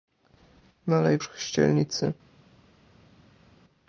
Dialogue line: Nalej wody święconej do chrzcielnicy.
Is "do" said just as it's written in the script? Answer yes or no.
no